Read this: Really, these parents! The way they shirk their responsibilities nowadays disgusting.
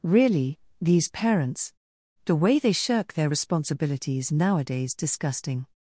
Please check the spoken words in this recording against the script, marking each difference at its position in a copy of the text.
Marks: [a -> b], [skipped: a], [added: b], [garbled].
Really, these parents! The way they shirk their responsibilities nowadays disgusting.